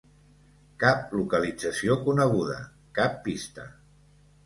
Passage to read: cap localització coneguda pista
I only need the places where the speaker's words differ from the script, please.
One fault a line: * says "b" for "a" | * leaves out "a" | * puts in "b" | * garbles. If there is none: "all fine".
* puts in "cap"